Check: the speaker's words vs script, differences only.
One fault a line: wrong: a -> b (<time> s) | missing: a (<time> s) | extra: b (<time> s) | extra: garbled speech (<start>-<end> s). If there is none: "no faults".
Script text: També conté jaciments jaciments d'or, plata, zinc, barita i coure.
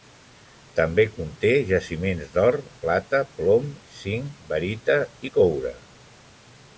missing: jaciments (2.3 s)
extra: plom (3.4 s)